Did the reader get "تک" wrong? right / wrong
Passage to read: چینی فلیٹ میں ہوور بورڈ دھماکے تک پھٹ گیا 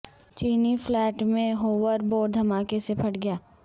wrong